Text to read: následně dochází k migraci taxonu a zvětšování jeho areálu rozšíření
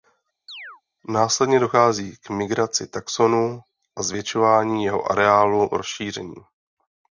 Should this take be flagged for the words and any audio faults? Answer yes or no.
yes